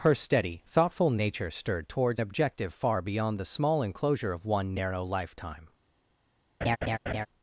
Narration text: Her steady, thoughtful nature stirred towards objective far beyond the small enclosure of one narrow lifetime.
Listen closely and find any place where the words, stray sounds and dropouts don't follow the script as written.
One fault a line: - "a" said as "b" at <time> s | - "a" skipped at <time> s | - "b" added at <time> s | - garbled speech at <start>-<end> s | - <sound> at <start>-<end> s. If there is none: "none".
- laugh at 6.6-7.3 s